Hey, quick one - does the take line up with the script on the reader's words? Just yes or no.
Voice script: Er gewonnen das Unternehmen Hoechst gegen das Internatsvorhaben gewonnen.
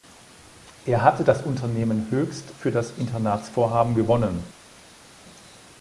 no